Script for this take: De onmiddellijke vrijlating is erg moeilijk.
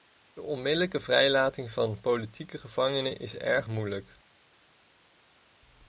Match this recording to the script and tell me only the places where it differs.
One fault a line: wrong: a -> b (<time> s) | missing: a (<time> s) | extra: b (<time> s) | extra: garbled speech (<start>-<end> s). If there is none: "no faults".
extra: van politieke gevangenen (1.7 s)